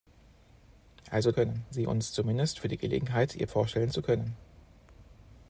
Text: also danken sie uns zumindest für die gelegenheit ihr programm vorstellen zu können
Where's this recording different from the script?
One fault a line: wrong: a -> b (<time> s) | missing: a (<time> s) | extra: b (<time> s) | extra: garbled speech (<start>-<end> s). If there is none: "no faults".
wrong: danken -> können (1.3 s)
missing: programm (3.5 s)